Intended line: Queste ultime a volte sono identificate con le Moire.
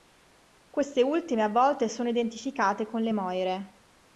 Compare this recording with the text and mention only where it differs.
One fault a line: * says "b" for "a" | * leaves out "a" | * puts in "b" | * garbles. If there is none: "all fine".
all fine